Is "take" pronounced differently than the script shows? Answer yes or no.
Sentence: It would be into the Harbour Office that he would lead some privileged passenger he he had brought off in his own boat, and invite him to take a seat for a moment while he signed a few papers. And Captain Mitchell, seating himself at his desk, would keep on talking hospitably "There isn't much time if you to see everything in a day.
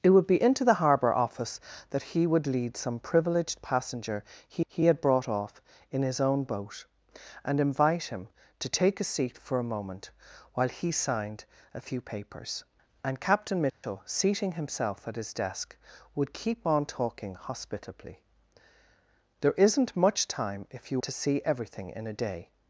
no